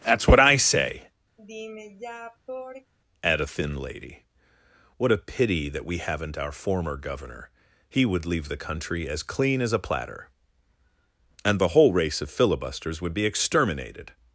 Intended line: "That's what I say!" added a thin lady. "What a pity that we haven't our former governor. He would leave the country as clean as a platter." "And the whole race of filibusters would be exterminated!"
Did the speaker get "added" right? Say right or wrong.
wrong